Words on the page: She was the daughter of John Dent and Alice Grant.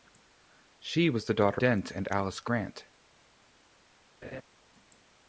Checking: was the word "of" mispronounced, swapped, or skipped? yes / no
yes